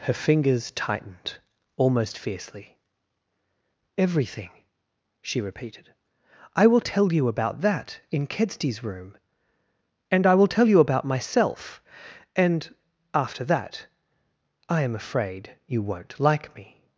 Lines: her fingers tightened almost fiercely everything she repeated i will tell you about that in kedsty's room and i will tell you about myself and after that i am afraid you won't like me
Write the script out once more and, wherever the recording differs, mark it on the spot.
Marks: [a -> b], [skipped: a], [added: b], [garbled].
her fingers tightened almost fiercely everything she repeated i will tell you about that in kedsty's room and i will tell you about myself and after that i am afraid you won't like me